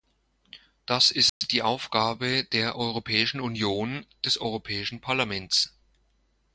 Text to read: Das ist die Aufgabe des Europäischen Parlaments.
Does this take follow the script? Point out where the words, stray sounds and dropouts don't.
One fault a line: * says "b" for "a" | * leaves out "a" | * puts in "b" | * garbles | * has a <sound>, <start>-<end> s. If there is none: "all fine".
* has a dropout, 1.3-1.4 s
* puts in "der Europäischen Union"